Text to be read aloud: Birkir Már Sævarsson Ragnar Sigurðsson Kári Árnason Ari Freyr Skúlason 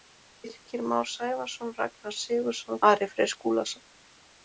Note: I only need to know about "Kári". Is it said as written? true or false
false